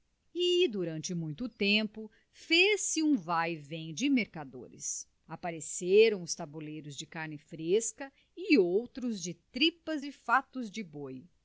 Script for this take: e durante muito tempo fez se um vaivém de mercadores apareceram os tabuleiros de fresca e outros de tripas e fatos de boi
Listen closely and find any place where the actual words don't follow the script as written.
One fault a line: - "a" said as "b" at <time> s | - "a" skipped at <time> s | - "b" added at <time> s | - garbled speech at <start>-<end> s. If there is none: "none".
- "carne" added at 7.0 s